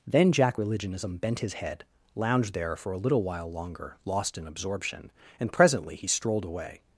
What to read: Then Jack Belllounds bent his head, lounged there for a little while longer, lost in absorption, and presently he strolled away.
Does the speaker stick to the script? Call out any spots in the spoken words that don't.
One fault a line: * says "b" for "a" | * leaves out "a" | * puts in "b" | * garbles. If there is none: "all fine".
* says "Religionism" for "Belllounds"